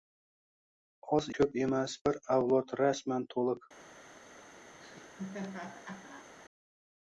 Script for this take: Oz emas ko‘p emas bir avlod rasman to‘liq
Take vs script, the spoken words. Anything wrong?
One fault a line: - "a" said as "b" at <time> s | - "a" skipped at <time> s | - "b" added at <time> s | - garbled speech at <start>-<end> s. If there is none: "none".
- "emas" skipped at 1.3 s